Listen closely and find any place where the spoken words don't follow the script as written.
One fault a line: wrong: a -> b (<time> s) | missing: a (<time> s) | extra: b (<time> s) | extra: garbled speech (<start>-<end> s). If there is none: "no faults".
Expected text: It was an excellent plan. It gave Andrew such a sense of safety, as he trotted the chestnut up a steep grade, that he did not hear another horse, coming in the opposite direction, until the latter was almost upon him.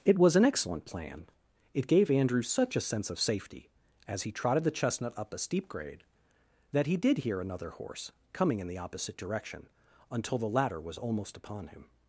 missing: not (7.2 s)